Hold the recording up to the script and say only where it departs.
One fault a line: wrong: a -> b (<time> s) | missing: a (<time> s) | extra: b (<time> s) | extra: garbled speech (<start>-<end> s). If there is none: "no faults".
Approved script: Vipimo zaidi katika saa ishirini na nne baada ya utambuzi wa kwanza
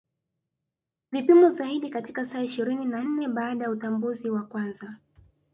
no faults